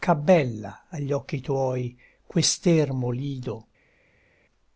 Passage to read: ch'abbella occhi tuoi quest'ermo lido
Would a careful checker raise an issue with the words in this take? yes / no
yes